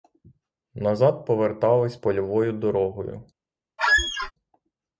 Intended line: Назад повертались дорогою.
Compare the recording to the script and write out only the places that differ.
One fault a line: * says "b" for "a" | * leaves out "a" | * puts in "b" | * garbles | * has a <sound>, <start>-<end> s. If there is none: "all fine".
* puts in "польовою"
* has a squeak, 3.8-4.3 s